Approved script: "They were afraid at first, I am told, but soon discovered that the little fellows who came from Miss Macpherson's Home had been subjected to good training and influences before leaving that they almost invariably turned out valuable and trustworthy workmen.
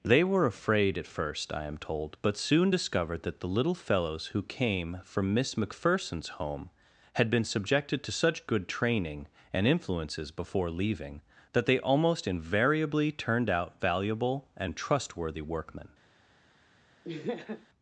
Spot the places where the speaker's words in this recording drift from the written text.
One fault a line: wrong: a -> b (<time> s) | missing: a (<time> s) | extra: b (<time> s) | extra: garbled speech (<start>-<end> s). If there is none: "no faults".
extra: such (8.1 s)